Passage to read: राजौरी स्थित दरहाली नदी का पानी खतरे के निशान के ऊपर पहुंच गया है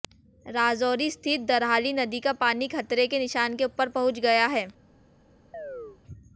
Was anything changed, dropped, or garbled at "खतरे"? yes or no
no